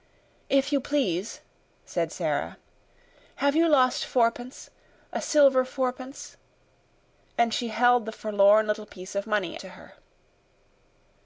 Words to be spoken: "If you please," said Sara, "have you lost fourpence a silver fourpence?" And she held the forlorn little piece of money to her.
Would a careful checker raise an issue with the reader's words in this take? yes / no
no